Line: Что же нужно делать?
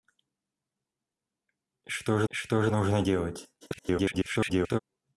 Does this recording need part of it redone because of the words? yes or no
yes